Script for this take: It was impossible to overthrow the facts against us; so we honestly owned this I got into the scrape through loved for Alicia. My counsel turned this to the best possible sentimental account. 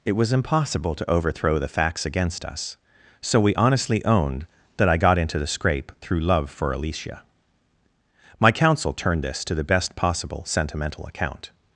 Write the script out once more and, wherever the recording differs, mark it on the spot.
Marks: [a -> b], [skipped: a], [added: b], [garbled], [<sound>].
It was impossible to overthrow the facts against us; so we honestly owned [this -> that] I got into the scrape through [loved -> love] for Alicia. My counsel turned this to the best possible sentimental account.